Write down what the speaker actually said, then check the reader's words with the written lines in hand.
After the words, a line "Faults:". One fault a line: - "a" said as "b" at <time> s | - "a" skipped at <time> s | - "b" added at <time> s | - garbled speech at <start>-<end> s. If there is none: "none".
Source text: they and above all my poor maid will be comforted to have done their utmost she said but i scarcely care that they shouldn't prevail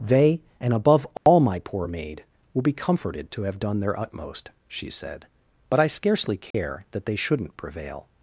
they and above all my poor maid will be comforted to have done their utmost she said but i scarcely care that they shouldn't prevail
Faults:
none